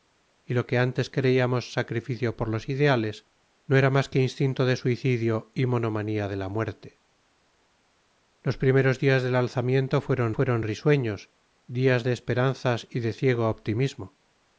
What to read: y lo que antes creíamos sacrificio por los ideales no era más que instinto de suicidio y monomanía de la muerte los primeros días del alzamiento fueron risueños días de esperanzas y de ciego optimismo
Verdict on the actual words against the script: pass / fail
fail